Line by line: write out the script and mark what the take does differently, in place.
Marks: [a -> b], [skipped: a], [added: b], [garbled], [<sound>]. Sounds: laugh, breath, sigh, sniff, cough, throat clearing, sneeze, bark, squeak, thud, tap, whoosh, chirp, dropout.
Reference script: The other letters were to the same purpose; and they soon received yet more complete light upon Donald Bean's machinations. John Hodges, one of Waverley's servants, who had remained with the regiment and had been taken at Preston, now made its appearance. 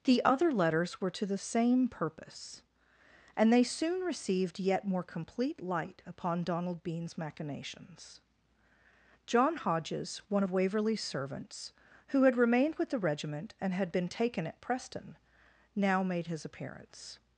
The other letters were to the same purpose; and they soon received yet more complete light upon Donald Bean's machinations. John Hodges, one of Waverley's servants, who had remained with the regiment and had been taken at Preston, now made [its -> his] appearance.